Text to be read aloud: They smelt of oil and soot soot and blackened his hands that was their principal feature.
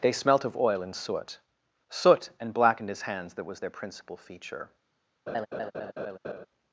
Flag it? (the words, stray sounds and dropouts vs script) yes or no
yes